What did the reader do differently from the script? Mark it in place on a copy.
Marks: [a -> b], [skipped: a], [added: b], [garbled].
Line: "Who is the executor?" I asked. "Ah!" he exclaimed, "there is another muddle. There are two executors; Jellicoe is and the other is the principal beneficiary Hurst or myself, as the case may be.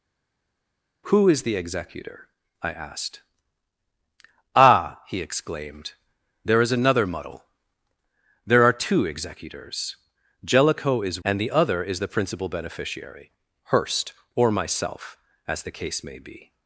"Who is the executor?" I asked. "Ah!" he exclaimed, "there is another muddle. There are two executors; Jellicoe is and the other is the principal beneficiary Hurst or myself, as the case may be.